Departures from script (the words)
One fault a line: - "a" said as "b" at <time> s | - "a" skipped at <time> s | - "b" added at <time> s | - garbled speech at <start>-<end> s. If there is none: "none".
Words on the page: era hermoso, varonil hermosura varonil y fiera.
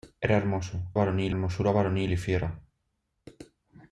none